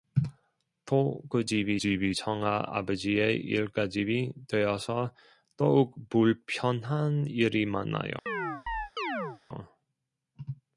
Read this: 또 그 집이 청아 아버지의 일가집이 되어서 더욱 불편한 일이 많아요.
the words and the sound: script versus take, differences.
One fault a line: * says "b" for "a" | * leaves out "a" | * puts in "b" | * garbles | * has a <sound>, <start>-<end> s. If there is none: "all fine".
* puts in "집이"
* has a chirp, 8.3-9.4 s